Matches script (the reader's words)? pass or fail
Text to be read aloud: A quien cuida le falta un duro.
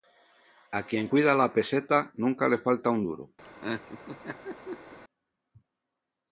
fail